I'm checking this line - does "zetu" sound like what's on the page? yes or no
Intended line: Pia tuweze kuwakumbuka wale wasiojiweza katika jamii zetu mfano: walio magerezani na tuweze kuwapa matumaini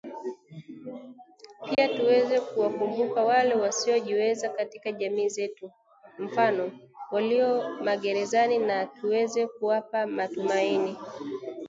yes